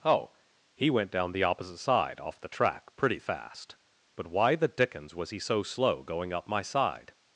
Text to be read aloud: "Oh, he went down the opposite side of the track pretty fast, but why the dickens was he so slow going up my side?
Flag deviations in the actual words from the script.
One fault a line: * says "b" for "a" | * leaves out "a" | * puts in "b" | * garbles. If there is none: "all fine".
* says "off" for "of"